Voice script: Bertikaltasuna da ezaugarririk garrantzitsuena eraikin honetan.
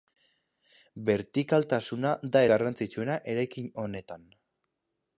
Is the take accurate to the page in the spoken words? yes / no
no